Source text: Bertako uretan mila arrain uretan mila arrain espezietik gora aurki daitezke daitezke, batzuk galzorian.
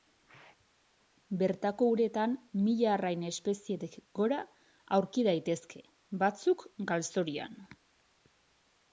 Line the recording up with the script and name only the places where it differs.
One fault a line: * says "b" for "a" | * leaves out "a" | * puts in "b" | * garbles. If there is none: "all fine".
* leaves out "uretan mila arrain"
* leaves out "daitezke"